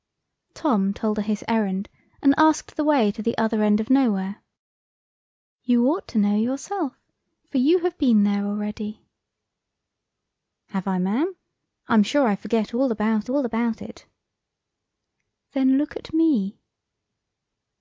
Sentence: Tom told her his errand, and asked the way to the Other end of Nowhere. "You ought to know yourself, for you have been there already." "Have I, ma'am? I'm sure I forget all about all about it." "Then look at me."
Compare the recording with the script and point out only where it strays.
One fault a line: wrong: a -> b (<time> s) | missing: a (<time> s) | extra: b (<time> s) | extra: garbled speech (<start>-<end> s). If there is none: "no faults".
no faults